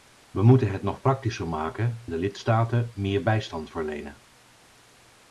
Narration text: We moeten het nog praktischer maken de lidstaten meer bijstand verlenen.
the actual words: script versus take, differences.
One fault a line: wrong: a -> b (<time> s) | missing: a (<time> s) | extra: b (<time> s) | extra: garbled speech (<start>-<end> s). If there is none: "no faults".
no faults